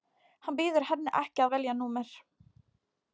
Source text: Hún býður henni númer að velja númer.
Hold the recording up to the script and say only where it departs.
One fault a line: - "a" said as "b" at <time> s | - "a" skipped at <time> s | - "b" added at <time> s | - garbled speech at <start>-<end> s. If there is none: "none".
- "Hún" said as "Hann" at 0.5 s
- "númer" said as "ekki" at 1.2 s